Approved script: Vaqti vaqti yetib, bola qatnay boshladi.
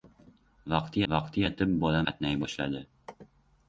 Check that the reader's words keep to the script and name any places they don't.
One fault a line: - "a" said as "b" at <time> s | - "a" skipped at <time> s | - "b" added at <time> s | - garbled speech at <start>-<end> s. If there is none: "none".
none